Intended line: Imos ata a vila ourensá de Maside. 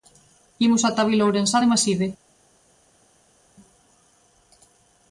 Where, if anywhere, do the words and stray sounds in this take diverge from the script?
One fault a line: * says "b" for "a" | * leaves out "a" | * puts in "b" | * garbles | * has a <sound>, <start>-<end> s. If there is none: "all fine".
all fine